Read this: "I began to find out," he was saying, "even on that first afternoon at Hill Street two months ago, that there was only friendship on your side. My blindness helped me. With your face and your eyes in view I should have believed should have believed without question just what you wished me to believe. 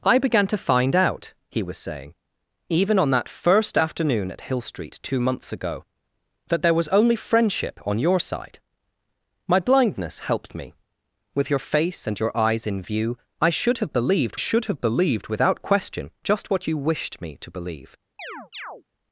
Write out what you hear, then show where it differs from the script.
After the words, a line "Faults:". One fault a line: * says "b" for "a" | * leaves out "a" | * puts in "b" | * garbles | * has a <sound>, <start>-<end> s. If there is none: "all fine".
"I began to find out," he was saying, "even on that first afternoon at Hill Street two months ago, that there was only friendship on your side. My blindness helped me. With your face and your eyes in view I should have believed should have believed without question just what you wished me to believe.
Faults:
* has a chirp, 18.2-18.8 s